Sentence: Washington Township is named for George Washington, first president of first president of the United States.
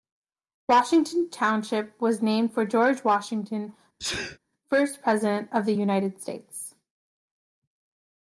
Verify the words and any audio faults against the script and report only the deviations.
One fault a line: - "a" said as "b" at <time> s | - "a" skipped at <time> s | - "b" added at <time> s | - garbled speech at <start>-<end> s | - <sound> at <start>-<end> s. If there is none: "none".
- "is" said as "was" at 2.0 s
- sneeze at 4.0-4.4 s
- "first president of" skipped at 5.6 s